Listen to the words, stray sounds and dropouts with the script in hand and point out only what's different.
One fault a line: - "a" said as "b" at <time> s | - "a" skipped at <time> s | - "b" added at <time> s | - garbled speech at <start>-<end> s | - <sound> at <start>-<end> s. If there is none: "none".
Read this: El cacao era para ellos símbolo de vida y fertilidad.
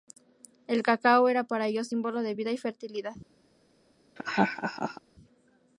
- laugh at 4.2-5.0 s